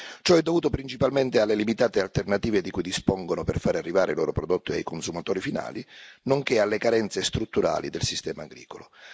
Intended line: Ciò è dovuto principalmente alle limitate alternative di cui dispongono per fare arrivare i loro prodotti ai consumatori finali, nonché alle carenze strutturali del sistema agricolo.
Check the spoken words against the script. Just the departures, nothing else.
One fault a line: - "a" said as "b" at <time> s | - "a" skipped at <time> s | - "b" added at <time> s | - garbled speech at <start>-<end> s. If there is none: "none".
none